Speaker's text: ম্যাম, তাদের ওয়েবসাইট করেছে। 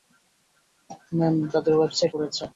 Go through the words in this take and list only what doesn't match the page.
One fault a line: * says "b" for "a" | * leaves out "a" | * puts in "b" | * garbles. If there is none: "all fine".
all fine